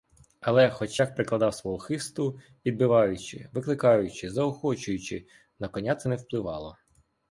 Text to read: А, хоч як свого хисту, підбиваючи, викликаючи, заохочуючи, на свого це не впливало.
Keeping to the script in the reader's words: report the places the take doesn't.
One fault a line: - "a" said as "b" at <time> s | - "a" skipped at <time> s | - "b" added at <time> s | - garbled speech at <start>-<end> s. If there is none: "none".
- "А" said as "Але" at 0.4 s
- "прикладав" added at 1.1 s
- "свого" said as "коня" at 5.7 s